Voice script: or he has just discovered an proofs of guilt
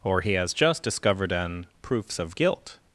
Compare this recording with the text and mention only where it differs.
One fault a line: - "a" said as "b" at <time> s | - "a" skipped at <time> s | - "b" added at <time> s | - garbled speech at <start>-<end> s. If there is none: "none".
none